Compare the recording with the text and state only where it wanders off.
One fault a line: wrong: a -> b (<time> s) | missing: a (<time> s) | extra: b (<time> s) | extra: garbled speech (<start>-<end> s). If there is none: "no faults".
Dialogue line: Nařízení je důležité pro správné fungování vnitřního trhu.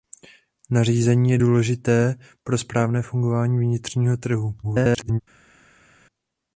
extra: garbled speech (4.6-5.2 s)